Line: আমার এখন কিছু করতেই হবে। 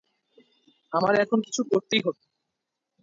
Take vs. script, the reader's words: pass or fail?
pass